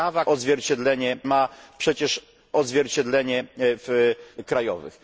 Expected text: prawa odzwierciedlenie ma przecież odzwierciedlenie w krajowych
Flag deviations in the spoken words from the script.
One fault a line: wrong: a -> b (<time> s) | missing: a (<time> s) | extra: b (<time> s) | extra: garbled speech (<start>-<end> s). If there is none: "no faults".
no faults